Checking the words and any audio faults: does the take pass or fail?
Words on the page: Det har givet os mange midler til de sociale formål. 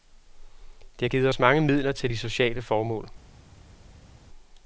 pass